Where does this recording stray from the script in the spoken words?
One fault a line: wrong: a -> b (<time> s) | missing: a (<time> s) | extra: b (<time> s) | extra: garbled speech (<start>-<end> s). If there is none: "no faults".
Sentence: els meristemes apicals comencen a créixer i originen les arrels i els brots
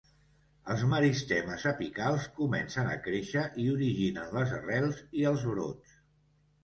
no faults